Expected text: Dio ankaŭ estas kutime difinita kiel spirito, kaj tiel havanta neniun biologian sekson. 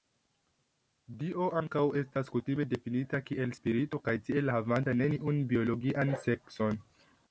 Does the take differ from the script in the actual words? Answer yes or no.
no